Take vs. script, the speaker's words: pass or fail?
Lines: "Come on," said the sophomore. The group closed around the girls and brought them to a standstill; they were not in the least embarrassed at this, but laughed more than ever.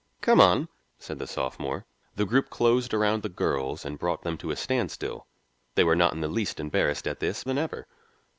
fail